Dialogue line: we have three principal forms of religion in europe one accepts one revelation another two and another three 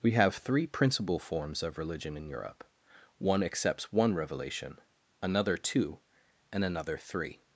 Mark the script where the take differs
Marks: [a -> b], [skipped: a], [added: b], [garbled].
we have three principal forms of religion in europe one accepts one revelation another two and another three